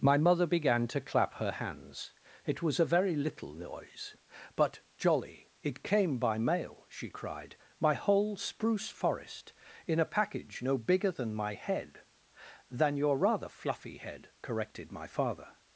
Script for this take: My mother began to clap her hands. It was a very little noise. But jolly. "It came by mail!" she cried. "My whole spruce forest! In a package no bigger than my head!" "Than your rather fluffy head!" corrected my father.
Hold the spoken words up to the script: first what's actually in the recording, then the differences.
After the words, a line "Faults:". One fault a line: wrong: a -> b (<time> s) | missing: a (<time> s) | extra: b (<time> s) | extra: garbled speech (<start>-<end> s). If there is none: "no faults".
My mother began to clap her hands. It was a very little noise. But jolly. "It came by mail!" she cried. "My whole spruce forest! In a package no bigger than my head!" "Than your rather fluffy head!" corrected my father.
Faults:
no faults